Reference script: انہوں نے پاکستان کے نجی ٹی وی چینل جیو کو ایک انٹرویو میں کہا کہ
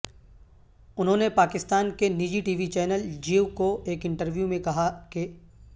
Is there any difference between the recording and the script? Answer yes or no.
no